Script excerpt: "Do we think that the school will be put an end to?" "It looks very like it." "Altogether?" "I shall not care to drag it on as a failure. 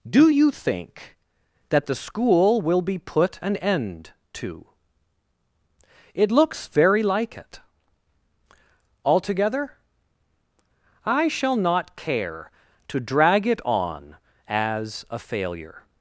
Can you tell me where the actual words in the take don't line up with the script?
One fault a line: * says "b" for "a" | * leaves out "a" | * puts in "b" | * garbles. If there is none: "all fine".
* says "you" for "we"